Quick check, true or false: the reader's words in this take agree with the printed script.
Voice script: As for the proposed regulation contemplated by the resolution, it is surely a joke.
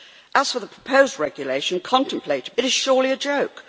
false